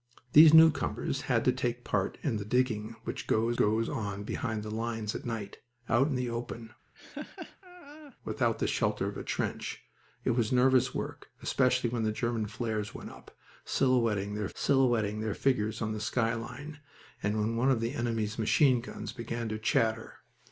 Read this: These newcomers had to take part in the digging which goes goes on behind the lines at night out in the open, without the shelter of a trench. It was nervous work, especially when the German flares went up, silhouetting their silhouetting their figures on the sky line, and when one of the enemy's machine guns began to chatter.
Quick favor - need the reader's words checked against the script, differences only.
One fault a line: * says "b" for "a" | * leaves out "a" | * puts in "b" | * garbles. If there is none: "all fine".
all fine